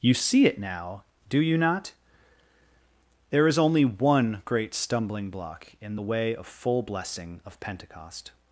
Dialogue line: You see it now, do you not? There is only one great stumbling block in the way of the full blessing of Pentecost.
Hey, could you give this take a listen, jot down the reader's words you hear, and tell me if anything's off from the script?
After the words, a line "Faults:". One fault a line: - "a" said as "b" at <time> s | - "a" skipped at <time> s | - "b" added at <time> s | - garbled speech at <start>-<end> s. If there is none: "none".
You see it now, do you not? There is only one great stumbling block in the way of full blessing of Pentecost.
Faults:
- "the" skipped at 6.5 s